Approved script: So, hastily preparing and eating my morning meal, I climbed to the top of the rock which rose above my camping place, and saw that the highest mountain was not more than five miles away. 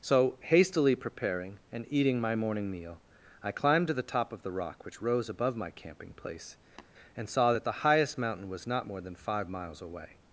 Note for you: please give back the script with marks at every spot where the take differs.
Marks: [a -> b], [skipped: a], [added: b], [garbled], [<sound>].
So, hastily preparing and eating my morning meal, I climbed to the top of the rock which rose above my camping place, [tap] and saw that the highest mountain was not more than five miles away.